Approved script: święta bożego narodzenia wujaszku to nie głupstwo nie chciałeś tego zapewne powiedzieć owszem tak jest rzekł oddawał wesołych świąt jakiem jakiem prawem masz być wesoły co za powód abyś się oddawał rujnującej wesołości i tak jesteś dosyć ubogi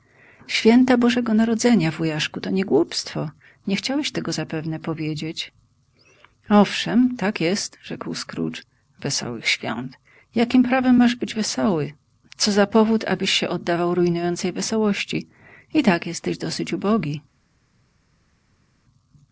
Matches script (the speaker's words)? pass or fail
fail